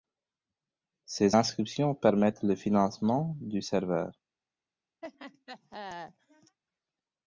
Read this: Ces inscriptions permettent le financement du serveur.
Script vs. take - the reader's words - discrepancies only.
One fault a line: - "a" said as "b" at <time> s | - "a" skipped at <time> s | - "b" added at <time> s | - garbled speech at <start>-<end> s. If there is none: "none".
none